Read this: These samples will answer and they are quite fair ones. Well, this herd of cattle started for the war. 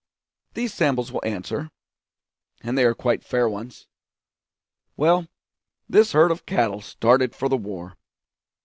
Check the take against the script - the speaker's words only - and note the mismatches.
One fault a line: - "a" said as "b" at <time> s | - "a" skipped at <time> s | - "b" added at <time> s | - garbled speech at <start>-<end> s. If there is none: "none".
none